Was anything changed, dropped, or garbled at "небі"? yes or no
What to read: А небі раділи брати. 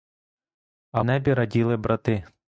no